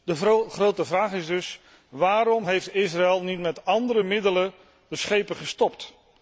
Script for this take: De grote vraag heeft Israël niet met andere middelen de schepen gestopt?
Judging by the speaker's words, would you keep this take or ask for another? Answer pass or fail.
fail